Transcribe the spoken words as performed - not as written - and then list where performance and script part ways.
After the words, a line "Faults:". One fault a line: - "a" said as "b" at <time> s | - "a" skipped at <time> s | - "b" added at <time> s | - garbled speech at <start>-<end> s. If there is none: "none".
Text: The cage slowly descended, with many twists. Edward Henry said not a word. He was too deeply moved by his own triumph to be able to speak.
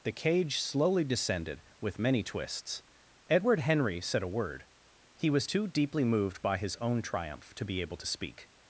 The cage slowly descended, with many twists. Edward Henry said a word. He was too deeply moved by his own triumph to be able to speak.
Faults:
- "not" skipped at 4.2 s